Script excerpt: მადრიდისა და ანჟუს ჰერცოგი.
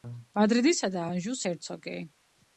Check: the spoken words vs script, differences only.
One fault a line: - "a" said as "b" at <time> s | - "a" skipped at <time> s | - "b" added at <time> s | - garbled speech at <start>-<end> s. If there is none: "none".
none